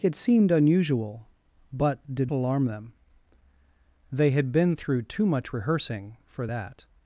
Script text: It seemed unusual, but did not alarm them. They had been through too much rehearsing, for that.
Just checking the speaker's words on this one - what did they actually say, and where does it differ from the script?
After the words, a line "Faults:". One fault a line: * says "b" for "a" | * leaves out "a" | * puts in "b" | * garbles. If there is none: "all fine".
It seemed unusual, but did alarm them. They had been through too much rehearsing, for that.
Faults:
* leaves out "not"